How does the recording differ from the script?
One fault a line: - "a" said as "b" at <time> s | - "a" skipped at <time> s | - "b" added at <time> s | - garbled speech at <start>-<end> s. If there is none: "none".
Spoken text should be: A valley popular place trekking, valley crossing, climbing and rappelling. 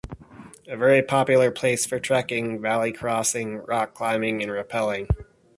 - "valley" said as "very" at 0.8 s
- "for" added at 1.9 s
- "rock" added at 3.6 s